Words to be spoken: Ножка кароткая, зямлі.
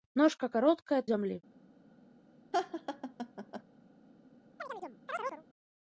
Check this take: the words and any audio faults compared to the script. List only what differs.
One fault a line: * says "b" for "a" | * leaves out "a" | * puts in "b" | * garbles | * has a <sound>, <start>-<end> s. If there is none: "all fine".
* has a laugh, 2.5-3.6 s
* has a chirp, 4.6-5.4 s